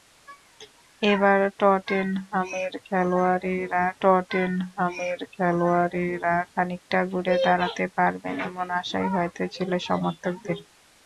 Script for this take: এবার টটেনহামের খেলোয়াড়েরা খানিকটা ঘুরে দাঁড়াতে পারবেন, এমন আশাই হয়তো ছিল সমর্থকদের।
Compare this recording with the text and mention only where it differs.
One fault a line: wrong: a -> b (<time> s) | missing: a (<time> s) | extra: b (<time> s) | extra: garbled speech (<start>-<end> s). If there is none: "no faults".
extra: টটেনহামের খেলোয়াড়েরা (4.0 s)